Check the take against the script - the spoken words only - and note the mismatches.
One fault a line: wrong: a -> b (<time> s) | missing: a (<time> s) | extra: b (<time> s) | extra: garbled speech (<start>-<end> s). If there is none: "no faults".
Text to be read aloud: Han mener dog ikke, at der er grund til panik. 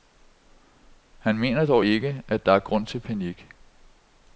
no faults